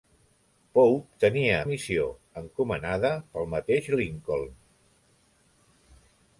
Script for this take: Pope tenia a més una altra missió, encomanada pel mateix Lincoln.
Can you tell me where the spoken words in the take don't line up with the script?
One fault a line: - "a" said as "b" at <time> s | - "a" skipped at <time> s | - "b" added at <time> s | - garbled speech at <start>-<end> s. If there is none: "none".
- "més una altra" skipped at 1.6 s